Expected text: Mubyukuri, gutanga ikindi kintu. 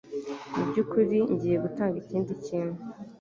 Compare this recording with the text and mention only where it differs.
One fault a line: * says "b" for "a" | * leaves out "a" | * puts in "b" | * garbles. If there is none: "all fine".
* puts in "ngiye"